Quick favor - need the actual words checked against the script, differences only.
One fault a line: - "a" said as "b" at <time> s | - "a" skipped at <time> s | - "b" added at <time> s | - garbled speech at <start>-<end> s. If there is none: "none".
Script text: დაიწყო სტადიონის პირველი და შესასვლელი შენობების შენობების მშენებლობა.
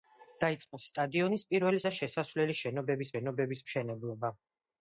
none